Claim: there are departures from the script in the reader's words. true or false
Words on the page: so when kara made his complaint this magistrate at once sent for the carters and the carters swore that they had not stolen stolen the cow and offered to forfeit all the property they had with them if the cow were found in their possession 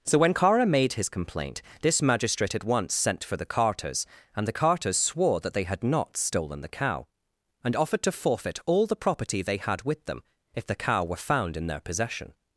true